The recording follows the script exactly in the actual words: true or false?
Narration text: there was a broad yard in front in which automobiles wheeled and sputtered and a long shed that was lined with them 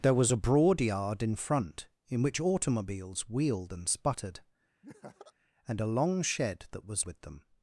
false